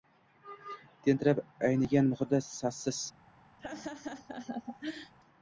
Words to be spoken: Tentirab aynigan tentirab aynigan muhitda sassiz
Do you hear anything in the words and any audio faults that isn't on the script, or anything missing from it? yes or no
yes